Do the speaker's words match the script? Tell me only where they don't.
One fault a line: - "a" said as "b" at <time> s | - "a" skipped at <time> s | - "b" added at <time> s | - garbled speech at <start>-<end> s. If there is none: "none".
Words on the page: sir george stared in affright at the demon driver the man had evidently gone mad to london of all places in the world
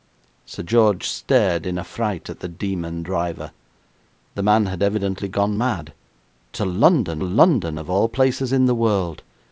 - "london" added at 7.2 s